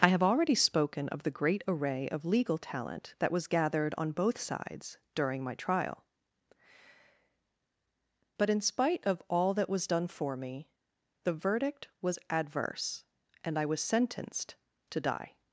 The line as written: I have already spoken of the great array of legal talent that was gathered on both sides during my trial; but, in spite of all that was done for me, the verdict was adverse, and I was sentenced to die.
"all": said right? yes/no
yes